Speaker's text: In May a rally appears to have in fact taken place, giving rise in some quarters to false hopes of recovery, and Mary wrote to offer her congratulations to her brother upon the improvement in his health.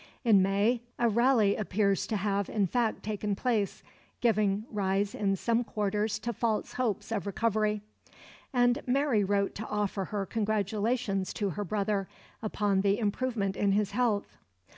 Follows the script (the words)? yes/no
yes